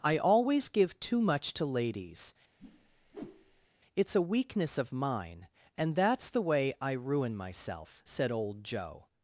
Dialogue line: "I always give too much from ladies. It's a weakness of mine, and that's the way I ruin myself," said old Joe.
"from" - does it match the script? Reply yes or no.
no